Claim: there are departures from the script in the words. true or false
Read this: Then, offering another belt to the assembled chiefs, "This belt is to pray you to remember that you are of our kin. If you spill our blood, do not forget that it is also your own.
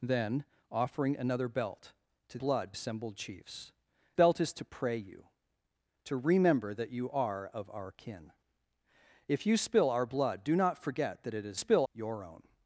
true